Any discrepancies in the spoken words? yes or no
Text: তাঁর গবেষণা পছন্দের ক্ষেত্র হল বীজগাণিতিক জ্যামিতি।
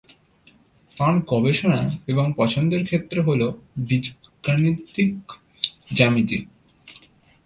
yes